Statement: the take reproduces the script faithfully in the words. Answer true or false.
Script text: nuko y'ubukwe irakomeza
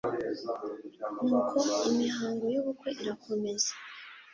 false